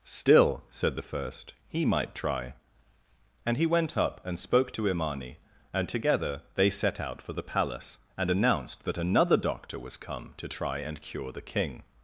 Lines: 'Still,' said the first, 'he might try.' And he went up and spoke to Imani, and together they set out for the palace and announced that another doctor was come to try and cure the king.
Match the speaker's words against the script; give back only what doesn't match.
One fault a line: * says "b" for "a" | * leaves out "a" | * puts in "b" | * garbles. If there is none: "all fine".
all fine